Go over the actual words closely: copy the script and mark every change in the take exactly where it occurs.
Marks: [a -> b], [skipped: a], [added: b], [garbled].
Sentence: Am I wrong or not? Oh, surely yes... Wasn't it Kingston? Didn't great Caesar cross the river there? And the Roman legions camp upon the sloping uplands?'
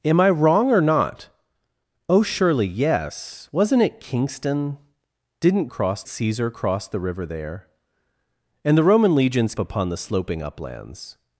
Am I wrong or not? Oh, surely yes... Wasn't it Kingston? Didn't [great -> cross] Caesar cross the river there? And the Roman legions [skipped: camp] upon the sloping uplands?'